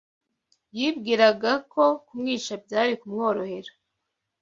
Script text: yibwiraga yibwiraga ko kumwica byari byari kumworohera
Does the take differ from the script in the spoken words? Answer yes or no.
yes